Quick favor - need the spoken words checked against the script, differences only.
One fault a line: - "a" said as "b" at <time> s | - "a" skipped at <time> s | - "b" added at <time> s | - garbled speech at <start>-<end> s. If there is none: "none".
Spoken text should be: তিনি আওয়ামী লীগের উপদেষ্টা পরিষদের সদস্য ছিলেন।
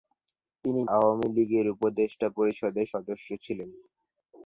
none